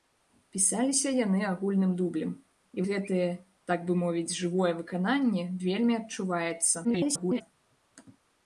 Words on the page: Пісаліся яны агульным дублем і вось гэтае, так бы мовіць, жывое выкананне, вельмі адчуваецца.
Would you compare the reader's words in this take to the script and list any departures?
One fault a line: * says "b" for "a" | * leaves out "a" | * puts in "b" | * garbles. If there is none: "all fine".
* leaves out "вось"
* garbles